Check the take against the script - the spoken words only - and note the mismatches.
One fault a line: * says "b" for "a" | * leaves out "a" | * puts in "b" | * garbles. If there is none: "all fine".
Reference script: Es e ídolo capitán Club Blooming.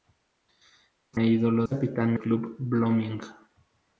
all fine